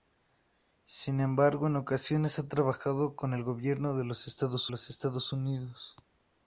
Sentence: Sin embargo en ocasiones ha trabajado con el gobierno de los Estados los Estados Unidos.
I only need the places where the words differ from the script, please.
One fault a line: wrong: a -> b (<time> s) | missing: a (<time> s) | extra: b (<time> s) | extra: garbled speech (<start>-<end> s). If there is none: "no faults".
no faults